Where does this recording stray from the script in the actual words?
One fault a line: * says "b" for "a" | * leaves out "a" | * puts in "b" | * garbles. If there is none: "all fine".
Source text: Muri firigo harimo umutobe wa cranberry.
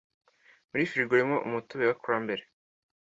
all fine